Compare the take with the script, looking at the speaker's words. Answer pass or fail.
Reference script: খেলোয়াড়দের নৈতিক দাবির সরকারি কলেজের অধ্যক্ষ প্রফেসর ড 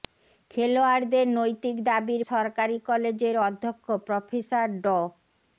pass